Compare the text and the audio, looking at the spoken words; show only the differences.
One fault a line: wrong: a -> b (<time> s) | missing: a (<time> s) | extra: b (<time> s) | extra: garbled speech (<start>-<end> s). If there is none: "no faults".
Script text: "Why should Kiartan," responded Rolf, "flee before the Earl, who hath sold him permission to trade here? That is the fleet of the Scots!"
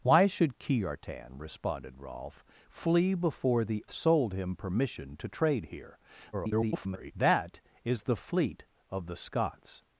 missing: Earl who hath (3.9 s)
extra: garbled speech (6.3-7.1 s)